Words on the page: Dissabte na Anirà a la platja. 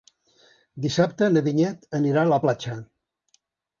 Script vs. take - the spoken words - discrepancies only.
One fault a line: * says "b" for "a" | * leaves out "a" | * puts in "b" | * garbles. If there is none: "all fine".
* puts in "Vinyet"